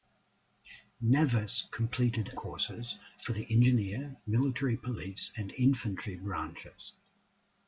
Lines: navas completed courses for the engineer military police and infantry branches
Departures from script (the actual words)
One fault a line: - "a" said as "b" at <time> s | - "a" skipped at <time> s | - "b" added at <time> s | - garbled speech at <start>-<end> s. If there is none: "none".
none